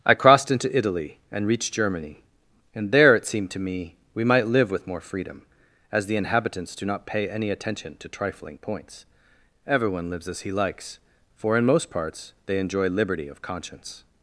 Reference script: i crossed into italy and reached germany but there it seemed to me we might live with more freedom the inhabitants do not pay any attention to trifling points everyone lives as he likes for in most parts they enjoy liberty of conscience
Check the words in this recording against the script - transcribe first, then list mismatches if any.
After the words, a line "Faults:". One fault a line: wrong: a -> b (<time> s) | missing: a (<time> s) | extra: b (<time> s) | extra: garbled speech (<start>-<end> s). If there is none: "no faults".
i crossed into italy and reached germany and there it seemed to me we might live with more freedom as the inhabitants do not pay any attention to trifling points everyone lives as he likes for in most parts they enjoy liberty of conscience
Faults:
wrong: but -> and (2.7 s)
extra: as (5.9 s)